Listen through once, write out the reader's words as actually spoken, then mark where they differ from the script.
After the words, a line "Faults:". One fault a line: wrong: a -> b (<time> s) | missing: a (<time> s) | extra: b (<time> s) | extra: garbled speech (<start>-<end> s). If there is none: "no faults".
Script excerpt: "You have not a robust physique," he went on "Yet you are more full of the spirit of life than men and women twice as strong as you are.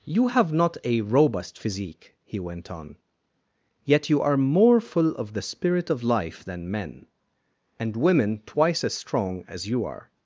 "You have not a robust physique," he went on "Yet you are more full of the spirit of life than men and women twice as strong as you are.
Faults:
no faults